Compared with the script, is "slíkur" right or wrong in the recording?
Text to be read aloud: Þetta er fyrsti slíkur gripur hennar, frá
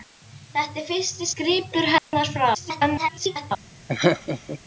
wrong